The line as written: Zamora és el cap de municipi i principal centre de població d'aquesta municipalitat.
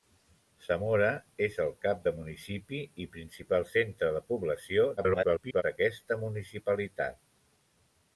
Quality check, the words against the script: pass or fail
fail